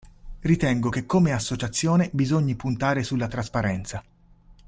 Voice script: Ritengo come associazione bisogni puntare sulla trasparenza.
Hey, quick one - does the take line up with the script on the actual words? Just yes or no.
no